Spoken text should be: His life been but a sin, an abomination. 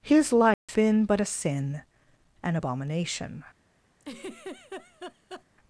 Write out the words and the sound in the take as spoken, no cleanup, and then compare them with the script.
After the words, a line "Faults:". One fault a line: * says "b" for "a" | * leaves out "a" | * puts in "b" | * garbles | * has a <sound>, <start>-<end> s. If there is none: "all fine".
His life been but a sin, an abomination.
Faults:
* has a dropout, 0.5-0.7 s
* has a laugh, 4.0-5.4 s